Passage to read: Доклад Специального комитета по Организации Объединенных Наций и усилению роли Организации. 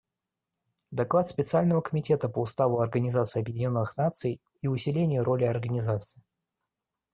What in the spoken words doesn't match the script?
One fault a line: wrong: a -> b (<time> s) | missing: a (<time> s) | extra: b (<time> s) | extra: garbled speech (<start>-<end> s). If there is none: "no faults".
extra: Уставу (2.4 s)